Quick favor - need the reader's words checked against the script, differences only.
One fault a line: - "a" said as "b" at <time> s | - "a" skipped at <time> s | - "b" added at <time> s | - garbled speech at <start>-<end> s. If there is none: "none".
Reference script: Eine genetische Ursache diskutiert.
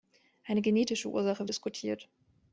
none